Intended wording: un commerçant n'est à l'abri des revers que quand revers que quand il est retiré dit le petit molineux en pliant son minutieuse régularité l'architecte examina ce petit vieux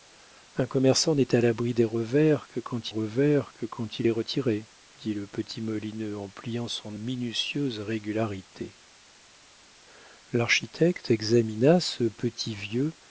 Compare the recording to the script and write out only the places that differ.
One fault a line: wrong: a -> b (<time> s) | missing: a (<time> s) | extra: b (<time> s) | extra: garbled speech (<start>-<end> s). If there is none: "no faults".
no faults